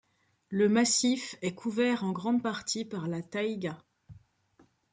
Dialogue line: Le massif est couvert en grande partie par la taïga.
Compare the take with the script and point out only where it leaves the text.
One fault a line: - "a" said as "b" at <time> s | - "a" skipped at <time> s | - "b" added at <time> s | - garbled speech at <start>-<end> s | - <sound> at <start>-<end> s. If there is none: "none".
none